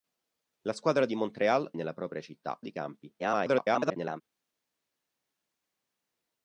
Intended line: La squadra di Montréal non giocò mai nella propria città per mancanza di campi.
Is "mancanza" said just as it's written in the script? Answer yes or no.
no